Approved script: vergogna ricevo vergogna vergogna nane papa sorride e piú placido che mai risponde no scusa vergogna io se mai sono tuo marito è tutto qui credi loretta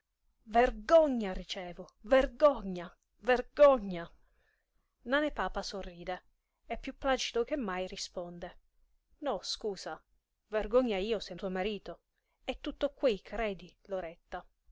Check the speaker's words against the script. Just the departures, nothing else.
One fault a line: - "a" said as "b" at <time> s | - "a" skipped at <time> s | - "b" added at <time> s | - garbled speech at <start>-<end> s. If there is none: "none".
- "mai sono" skipped at 11.3 s